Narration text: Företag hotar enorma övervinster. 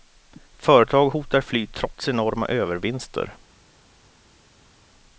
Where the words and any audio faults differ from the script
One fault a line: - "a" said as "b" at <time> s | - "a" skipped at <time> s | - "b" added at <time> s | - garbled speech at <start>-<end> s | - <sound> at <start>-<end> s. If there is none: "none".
- "fly trots" added at 1.4 s